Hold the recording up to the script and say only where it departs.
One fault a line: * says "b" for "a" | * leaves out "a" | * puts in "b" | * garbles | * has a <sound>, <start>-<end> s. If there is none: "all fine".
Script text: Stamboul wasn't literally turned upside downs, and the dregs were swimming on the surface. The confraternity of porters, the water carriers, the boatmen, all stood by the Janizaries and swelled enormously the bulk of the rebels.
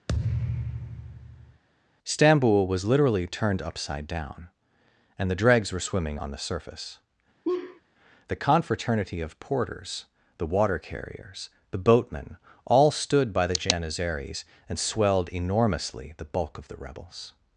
* has a thud, 0.1-1.6 s
* says "was" for "wasn't"
* says "down" for "downs"
* has a laugh, 7.4-7.8 s